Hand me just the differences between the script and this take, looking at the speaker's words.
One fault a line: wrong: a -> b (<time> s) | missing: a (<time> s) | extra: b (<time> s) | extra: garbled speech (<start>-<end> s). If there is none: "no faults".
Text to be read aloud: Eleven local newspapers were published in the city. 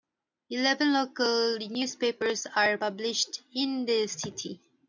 wrong: were -> are (2.5 s)